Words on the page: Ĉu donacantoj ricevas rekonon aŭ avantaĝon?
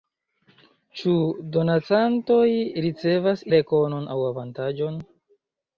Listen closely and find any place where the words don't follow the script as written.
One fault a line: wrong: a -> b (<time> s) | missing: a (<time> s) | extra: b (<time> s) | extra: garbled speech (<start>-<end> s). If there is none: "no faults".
no faults